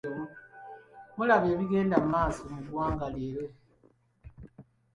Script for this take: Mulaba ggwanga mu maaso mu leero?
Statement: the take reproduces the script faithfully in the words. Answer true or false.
false